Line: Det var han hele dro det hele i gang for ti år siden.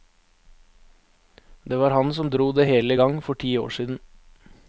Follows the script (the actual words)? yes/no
no